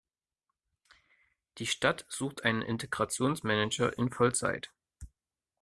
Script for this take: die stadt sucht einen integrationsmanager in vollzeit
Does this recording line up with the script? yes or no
yes